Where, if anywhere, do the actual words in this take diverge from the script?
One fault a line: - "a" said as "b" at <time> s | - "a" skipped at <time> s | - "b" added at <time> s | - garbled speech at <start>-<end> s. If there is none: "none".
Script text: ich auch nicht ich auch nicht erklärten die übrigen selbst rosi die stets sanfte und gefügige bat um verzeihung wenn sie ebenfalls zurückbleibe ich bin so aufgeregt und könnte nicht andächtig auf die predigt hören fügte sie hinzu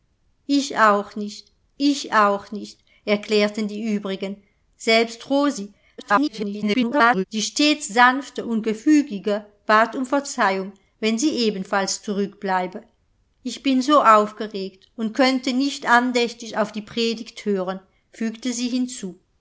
- garbled speech at 6.0-7.2 s